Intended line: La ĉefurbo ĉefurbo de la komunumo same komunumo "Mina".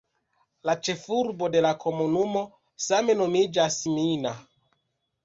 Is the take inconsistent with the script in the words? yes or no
yes